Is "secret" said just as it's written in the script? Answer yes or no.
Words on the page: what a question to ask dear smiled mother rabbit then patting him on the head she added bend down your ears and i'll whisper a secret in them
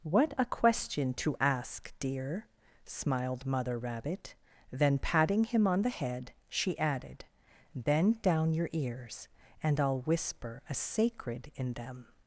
no